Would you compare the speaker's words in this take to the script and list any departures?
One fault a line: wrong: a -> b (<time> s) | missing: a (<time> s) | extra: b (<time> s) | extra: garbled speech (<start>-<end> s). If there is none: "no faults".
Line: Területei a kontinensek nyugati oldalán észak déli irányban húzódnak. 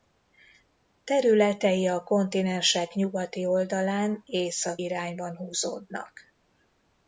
missing: déli (4.8 s)